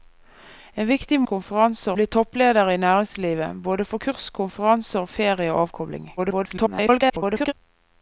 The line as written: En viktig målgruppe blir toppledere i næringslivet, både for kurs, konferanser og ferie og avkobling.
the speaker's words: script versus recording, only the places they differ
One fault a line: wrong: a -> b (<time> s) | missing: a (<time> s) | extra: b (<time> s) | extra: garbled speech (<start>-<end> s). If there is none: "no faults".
wrong: målgruppe -> konferanser (1.2 s)
extra: garbled speech (6.2-7.5 s)